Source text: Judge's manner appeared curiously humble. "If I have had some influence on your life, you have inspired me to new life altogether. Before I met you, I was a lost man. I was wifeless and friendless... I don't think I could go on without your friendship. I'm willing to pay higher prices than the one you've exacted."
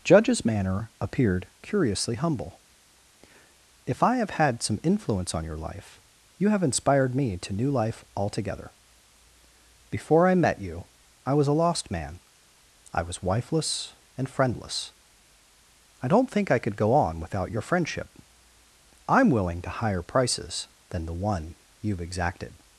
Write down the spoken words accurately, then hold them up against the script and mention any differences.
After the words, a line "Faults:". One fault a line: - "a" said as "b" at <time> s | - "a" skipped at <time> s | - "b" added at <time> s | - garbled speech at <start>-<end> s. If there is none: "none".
Judge's manner appeared curiously humble. "If I have had some influence on your life, you have inspired me to new life altogether. Before I met you, I was a lost man. I was wifeless and friendless... I don't think I could go on without your friendship. I'm willing to higher prices than the one you've exacted."
Faults:
- "pay" skipped at 19.7 s